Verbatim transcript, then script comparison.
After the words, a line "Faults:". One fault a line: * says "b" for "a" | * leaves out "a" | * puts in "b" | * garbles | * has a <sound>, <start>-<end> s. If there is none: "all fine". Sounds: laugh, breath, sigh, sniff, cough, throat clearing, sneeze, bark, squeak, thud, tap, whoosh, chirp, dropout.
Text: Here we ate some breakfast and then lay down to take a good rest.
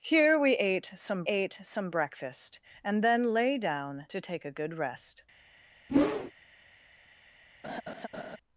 Here we ate some ate some breakfast and then lay down to take a good rest.
Faults:
* puts in "ate some"
* has a whoosh, 5.9-6.3 s
* has a laugh, 7.6-8.4 s